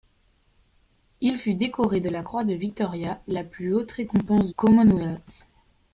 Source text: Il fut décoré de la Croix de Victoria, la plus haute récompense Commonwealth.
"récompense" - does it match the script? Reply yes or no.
yes